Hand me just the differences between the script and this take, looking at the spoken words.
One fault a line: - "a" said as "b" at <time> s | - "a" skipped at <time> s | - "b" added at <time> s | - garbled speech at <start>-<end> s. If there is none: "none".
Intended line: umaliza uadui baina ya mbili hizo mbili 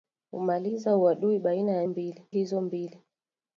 none